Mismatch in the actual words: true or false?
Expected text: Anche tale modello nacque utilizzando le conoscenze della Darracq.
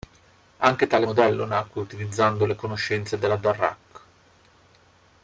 false